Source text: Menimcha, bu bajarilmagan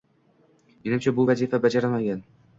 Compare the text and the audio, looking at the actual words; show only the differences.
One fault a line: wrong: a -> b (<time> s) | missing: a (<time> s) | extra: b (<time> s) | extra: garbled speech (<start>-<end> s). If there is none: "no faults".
extra: vazifa (1.3 s)